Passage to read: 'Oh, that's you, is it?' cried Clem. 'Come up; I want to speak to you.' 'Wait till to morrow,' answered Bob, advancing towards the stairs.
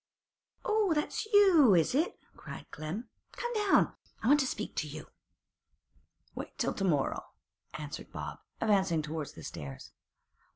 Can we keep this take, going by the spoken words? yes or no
no